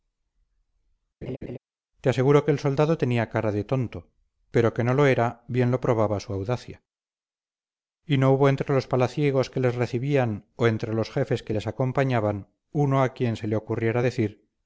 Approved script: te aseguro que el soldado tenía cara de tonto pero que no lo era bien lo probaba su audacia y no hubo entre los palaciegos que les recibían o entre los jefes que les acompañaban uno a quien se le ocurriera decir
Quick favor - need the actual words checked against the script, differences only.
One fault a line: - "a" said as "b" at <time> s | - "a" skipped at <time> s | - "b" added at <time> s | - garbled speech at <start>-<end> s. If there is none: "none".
none